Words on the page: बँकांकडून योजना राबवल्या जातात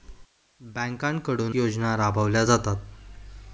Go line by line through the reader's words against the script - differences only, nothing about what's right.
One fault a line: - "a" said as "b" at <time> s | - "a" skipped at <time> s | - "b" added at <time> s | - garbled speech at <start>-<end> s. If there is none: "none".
none